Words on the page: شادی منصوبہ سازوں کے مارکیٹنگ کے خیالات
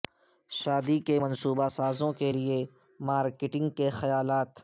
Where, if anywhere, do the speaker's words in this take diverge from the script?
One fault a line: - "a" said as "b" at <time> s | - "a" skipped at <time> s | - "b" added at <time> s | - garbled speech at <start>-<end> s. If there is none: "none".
- "کے" added at 1.0 s
- "لئے" added at 2.3 s